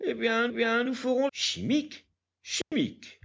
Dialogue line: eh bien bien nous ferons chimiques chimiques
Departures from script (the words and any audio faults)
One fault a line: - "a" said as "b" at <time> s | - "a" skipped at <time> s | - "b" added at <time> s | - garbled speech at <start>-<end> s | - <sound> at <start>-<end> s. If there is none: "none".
- dropout at 2.6-2.7 s